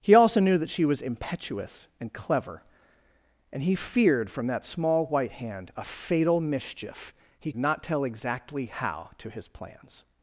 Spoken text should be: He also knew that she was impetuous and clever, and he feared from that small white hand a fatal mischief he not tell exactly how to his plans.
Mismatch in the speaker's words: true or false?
false